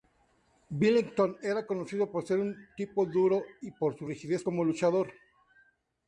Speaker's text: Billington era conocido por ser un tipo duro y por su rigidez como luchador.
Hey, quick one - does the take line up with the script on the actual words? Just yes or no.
yes